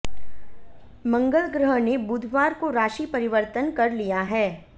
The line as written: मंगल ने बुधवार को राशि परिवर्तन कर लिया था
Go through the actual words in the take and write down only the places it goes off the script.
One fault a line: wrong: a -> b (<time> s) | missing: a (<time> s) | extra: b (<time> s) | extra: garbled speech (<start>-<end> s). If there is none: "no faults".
extra: ग्रह (1.5 s)
wrong: था -> है (4.2 s)